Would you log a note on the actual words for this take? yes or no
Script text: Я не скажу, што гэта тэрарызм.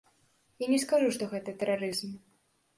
no